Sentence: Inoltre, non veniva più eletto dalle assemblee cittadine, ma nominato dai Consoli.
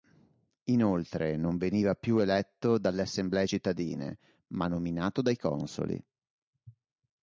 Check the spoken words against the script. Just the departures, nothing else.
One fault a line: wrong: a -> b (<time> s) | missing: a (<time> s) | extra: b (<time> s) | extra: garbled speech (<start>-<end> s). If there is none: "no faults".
no faults